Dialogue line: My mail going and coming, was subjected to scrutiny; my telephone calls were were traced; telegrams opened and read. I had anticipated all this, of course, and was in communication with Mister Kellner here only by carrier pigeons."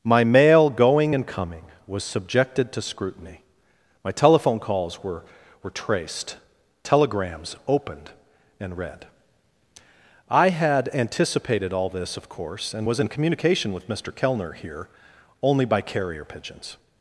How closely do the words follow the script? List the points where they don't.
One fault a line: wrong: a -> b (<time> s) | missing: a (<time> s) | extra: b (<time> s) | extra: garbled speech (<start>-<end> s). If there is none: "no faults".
no faults